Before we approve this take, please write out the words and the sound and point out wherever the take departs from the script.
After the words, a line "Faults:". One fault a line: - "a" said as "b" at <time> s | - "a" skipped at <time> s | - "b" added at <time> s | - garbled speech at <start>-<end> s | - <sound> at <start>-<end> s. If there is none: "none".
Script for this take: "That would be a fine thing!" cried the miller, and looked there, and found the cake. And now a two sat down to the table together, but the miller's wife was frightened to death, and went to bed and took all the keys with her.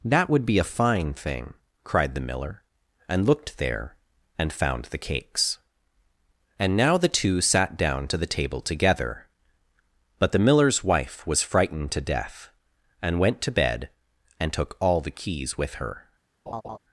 "That would be a fine thing!" cried the miller, and looked there, and found the cakes. And now the two sat down to the table together, but the miller's wife was frightened to death, and went to bed and took all the keys with her.
Faults:
- "cake" said as "cakes" at 5.0 s
- "a" said as "the" at 7.0 s
- laugh at 16.5-16.8 s